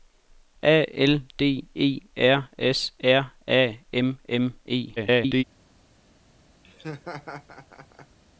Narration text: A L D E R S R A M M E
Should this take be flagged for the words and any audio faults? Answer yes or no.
yes